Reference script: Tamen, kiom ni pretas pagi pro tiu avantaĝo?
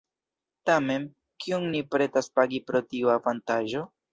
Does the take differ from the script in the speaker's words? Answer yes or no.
no